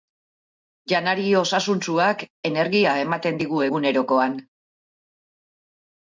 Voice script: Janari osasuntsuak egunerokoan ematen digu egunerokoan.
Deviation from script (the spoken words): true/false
true